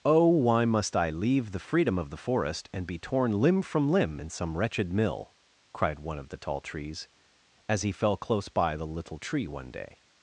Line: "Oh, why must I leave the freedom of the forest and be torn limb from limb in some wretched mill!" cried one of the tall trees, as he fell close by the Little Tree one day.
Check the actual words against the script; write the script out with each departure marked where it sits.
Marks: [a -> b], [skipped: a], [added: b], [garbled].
"Oh, why must I leave the freedom of the forest and be torn limb from limb in some wretched mill!" cried one of the tall trees, as he fell close by the Little Tree one day.